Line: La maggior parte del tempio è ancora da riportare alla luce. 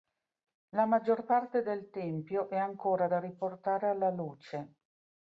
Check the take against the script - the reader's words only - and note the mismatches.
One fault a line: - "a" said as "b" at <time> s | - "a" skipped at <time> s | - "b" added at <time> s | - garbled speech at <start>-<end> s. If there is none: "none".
none